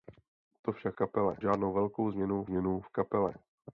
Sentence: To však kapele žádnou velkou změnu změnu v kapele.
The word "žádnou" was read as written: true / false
true